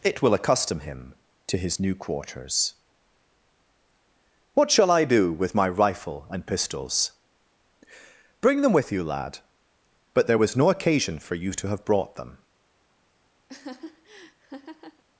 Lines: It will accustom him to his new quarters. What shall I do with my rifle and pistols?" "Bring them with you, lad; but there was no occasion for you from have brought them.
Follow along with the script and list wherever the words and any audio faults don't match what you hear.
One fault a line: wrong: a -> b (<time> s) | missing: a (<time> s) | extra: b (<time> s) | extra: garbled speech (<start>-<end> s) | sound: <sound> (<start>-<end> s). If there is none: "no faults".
wrong: from -> to (11.5 s)
sound: laugh (13.5-15.0 s)